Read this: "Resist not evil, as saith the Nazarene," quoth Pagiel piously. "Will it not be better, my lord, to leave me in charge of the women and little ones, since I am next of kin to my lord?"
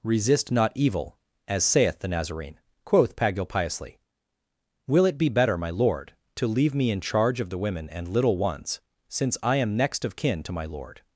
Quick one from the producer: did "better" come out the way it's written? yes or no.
yes